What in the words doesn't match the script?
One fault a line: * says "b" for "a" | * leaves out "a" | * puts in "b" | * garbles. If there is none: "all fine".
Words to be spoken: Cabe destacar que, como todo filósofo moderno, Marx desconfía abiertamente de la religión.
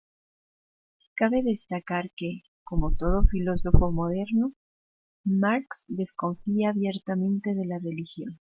all fine